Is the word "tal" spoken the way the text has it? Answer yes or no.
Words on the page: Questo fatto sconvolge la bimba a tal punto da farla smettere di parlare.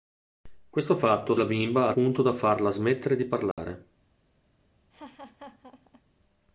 no